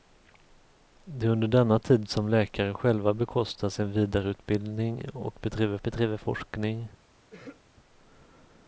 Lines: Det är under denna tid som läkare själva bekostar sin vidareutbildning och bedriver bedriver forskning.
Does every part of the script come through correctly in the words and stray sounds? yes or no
no